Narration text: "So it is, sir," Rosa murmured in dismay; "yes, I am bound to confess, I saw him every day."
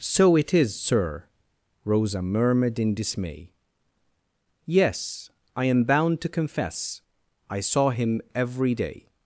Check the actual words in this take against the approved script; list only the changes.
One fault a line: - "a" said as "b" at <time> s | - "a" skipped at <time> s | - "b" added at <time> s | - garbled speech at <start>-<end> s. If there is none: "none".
none